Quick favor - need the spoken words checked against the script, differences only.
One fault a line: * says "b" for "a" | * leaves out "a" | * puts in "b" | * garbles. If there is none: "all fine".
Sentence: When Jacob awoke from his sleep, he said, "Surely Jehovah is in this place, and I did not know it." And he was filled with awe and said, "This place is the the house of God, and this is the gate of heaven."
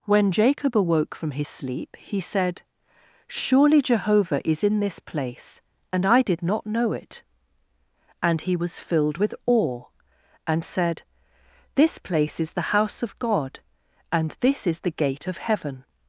* leaves out "the"